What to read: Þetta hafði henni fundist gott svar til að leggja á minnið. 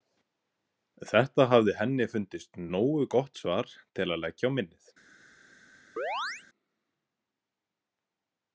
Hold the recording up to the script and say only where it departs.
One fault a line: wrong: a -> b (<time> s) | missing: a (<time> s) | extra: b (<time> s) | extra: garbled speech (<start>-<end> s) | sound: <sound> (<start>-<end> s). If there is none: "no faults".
extra: nógu (2.7 s)
sound: chirp (6.0-6.4 s)